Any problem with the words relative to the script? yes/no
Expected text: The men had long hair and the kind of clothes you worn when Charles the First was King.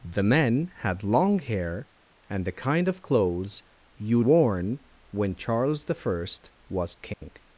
no